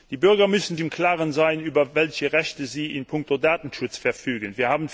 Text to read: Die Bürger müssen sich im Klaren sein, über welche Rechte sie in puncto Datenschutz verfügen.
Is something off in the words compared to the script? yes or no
yes